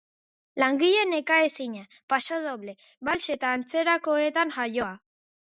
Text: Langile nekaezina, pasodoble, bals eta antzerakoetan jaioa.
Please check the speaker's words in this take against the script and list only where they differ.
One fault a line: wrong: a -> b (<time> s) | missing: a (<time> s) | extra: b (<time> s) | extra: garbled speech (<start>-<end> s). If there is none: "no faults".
no faults